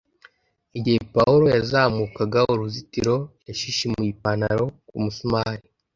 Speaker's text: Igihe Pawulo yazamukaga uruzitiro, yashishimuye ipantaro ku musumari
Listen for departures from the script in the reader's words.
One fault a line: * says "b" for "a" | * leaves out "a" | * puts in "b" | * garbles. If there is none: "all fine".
all fine